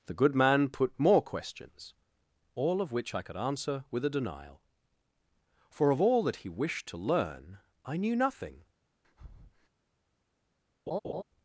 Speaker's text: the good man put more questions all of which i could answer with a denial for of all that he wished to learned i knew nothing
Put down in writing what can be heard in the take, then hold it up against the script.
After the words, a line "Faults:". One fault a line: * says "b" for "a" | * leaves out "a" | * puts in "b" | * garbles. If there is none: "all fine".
the good man put more questions all of which i could answer with a denial for of all that he wished to learn i knew nothing
Faults:
* says "learn" for "learned"